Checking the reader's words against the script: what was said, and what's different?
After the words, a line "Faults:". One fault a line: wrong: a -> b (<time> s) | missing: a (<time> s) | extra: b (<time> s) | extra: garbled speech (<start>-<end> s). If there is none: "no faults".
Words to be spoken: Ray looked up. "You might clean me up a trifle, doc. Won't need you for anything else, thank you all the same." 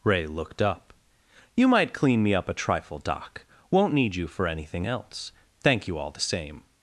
Ray looked up. "You might clean me up a trifle, doc. Won't need you for anything else, thank you all the same."
Faults:
no faults